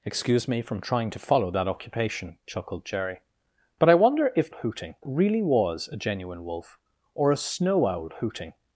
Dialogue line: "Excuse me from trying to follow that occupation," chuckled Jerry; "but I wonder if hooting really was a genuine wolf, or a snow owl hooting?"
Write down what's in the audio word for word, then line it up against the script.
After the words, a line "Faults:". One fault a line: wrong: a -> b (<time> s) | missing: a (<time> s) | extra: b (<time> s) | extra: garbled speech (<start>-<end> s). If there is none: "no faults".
"Excuse me from trying to follow that occupation," chuckled Jerry; "but I wonder if hooting really was a genuine wolf, or a snow owl hooting?"
Faults:
no faults